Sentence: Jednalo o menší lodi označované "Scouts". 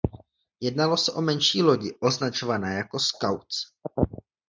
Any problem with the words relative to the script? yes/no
yes